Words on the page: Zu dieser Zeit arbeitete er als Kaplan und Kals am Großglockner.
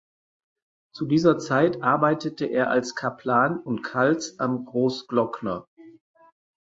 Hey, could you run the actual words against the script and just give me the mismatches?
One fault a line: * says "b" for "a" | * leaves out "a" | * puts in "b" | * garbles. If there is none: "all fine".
all fine